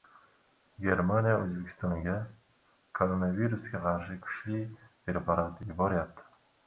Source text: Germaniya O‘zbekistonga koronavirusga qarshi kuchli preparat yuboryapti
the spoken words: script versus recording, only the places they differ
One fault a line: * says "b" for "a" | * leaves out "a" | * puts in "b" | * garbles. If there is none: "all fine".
all fine